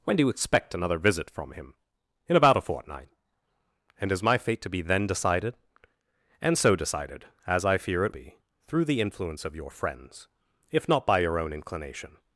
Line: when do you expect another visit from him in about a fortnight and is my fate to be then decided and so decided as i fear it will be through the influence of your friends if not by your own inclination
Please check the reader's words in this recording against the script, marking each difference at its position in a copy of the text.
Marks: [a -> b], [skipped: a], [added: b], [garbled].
when do you expect another visit from him in about a fortnight and is my fate to be then decided and so decided as i fear it [skipped: will] be through the influence of your friends if not by your own inclination